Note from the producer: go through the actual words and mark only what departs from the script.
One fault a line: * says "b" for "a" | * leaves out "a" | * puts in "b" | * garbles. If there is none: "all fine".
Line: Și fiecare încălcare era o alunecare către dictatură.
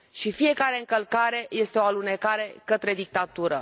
* says "este" for "era"